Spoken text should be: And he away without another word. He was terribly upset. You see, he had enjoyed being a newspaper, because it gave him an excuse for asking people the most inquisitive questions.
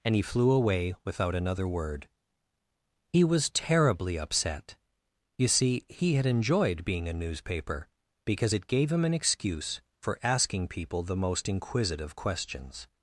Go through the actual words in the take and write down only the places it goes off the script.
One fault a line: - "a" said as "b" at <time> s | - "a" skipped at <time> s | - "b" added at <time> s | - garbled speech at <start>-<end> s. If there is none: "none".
- "flew" added at 0.2 s